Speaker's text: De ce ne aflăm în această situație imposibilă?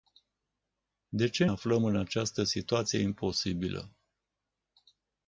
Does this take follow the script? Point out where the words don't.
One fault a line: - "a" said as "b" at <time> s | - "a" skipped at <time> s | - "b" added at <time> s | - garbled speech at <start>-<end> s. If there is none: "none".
- "ne" skipped at 1.4 s